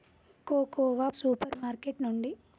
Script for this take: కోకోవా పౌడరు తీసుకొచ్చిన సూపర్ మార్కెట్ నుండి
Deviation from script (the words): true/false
true